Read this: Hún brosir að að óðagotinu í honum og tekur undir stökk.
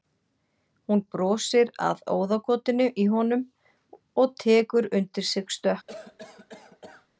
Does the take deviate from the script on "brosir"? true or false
false